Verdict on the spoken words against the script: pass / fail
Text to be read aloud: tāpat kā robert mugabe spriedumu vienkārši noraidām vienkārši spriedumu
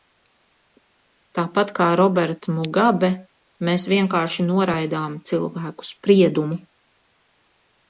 fail